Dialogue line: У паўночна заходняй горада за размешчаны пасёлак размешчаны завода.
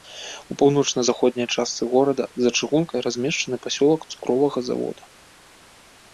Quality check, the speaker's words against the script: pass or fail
fail